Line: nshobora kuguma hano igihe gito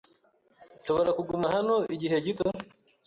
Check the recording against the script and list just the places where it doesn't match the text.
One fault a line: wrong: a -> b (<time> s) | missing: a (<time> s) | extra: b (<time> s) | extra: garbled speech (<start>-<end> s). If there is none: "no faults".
no faults